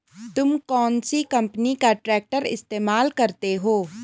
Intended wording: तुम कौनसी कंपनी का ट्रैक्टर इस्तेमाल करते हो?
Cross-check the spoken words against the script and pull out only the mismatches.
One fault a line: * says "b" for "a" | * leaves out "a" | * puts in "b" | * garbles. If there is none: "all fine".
all fine